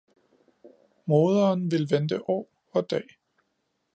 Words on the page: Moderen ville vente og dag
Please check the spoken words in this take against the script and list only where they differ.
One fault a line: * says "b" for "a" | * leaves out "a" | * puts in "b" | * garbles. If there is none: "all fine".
* puts in "år"